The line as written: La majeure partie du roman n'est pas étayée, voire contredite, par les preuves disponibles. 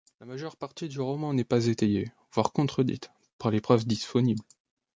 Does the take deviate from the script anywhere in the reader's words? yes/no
no